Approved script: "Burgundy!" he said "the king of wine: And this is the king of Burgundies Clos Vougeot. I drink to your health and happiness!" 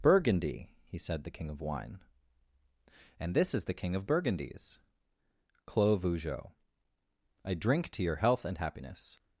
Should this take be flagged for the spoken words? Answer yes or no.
no